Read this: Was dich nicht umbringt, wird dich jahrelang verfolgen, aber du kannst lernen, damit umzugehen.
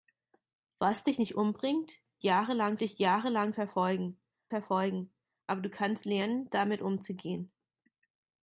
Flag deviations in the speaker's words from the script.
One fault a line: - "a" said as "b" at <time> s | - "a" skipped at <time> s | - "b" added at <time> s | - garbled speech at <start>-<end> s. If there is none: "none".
- "wird" said as "jahrelang" at 2.2 s
- "verfolgen" added at 4.5 s